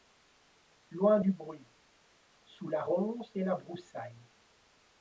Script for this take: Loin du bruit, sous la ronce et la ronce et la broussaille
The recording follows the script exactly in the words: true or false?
false